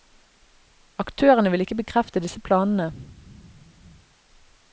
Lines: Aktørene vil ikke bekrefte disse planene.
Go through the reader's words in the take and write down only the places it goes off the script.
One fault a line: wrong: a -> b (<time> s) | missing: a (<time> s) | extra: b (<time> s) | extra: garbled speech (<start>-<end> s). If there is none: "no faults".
no faults